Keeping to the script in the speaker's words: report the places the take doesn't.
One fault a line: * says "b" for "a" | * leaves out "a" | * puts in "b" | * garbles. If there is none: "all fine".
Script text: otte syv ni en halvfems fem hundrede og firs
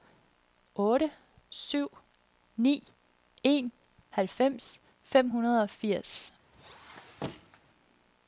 all fine